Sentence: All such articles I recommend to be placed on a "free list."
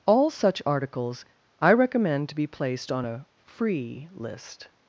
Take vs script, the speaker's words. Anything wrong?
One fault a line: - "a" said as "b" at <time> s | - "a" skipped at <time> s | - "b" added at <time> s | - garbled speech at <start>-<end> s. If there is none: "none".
none